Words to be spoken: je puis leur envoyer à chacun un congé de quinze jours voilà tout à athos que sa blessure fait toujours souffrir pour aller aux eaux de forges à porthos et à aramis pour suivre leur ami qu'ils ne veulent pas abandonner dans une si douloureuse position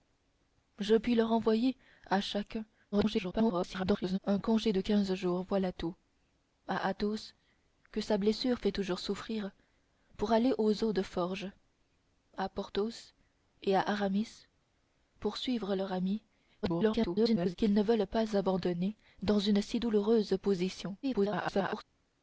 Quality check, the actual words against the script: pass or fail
fail